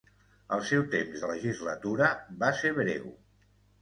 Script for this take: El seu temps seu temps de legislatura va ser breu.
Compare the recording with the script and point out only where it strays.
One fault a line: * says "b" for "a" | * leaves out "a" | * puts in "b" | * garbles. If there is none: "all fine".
* leaves out "seu temps"